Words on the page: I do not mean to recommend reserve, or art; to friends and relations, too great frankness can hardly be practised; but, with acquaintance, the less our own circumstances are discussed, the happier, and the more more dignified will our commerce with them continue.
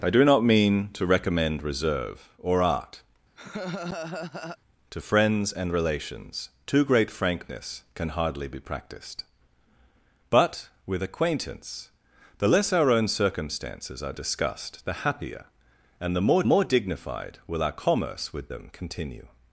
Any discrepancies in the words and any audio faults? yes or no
yes